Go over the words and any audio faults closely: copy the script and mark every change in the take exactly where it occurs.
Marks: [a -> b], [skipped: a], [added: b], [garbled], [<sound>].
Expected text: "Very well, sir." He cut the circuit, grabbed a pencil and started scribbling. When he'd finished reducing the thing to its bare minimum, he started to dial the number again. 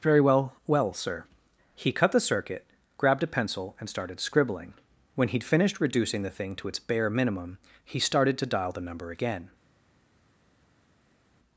"Very well, [added: well] sir." He cut the circuit, grabbed a pencil and started scribbling. When he'd finished reducing the thing to its bare minimum, he started to dial the number again.